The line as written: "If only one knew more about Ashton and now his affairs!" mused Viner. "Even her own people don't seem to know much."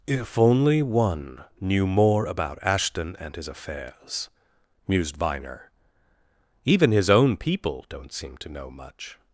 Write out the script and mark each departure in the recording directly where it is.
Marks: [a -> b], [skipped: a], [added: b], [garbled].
"If only one knew more about Ashton and [skipped: now] his affairs!" mused Viner. "Even [her -> his] own people don't seem to know much."